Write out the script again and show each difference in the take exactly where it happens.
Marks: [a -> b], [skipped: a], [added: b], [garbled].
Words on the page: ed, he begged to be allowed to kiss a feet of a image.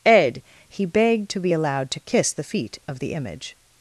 ed, he begged to be allowed to kiss [a -> the] feet of [a -> the] image.